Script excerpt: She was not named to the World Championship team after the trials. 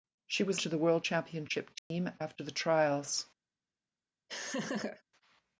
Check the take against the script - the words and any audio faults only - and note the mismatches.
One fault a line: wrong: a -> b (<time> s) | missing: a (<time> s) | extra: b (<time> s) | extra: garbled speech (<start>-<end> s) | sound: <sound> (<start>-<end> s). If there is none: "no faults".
missing: not named (0.6 s)
sound: dropout (1.8-1.9 s)
sound: laugh (4.3-5.0 s)